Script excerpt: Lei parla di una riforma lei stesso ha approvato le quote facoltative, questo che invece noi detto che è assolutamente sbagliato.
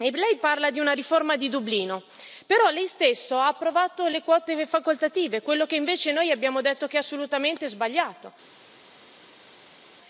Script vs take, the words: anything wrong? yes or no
yes